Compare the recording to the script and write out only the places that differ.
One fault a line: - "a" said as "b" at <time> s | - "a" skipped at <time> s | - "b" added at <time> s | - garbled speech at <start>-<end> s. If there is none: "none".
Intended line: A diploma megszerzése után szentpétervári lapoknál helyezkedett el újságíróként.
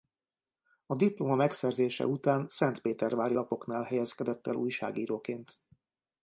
none